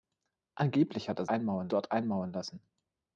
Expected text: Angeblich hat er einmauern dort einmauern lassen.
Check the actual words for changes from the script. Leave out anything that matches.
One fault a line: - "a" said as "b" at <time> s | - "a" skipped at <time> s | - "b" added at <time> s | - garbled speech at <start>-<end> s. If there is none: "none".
none